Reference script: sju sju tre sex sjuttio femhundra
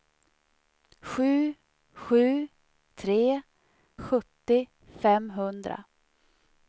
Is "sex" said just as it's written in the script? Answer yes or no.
no